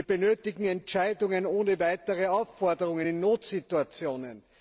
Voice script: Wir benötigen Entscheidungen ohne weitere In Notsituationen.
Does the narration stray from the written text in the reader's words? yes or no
yes